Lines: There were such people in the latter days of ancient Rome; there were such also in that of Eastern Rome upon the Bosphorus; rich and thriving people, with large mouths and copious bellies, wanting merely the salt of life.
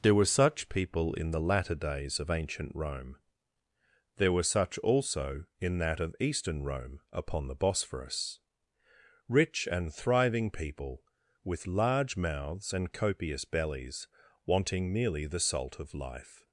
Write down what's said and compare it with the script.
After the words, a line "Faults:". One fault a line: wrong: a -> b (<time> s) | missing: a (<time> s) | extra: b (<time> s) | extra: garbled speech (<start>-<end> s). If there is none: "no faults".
There were such people in the latter days of ancient Rome; there were such also in that of Eastern Rome upon the Bosphorus; rich and thriving people, with large mouths and copious bellies, wanting merely the salt of life.
Faults:
no faults